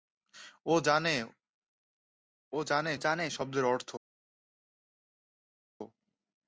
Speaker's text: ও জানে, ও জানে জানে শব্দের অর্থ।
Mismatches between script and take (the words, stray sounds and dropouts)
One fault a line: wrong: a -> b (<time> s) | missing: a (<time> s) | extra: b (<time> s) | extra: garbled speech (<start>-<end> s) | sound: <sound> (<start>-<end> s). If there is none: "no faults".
no faults